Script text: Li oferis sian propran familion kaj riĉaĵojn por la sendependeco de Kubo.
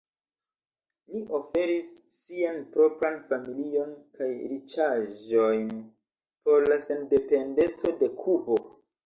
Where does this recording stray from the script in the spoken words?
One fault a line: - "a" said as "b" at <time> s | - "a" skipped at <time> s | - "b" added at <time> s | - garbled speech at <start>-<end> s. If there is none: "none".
none